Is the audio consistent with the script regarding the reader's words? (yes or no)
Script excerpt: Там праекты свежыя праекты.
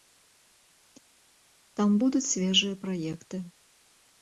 no